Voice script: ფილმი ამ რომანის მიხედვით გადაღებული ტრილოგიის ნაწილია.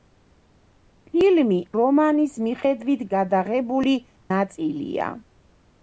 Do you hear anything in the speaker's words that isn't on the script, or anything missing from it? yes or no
yes